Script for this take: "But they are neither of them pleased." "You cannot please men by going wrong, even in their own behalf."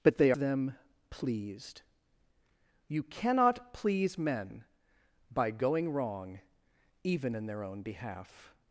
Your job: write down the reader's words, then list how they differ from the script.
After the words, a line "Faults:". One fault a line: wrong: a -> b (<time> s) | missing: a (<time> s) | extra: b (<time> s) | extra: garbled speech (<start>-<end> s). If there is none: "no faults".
"But they them pleased." "You cannot please men by going wrong, even in their own behalf."
Faults:
missing: are neither of (0.3 s)